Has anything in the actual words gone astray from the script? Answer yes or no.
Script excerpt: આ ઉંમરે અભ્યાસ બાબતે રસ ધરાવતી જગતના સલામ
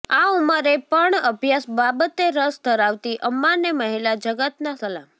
yes